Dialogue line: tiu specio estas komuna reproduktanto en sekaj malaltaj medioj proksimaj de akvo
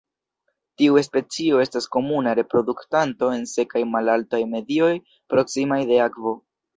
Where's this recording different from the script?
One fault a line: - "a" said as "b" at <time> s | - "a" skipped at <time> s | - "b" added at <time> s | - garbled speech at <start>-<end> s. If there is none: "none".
none